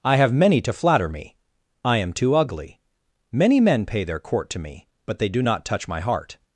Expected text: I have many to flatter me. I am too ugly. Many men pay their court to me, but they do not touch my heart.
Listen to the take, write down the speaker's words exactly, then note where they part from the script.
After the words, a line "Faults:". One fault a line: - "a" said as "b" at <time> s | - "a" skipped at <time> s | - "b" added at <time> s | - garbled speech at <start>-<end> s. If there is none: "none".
I have many to flatter me. I am too ugly. Many men pay their court to me, but they do not touch my heart.
Faults:
none